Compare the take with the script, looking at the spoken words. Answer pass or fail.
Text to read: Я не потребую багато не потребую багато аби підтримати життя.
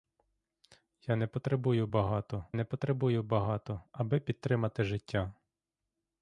pass